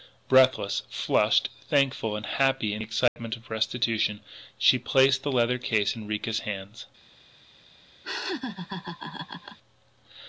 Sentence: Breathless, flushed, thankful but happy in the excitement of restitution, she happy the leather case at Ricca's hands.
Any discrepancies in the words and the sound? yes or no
yes